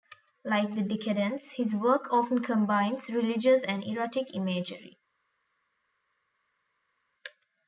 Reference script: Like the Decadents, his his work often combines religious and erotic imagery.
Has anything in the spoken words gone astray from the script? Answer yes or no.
yes